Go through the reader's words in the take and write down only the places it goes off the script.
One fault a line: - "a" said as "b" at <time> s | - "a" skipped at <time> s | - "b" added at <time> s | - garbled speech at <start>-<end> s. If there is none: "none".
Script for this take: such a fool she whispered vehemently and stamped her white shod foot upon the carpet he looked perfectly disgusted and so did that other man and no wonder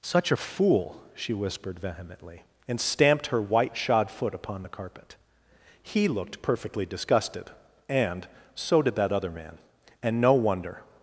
none